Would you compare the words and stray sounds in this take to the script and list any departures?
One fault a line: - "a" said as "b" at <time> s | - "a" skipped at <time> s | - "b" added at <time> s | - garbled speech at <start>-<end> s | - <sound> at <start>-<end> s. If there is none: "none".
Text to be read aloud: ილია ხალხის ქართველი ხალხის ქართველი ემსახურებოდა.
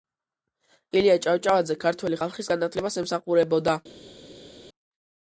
- "ხალხის" said as "ჭავჭავაძე" at 1.2 s
- "ქართველი" said as "განათლებას" at 2.5 s